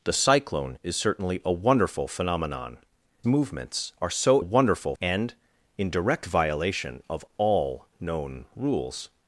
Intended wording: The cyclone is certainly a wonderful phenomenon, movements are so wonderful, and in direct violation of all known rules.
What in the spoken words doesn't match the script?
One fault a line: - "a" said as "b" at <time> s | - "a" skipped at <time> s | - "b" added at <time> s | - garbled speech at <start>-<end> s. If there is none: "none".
none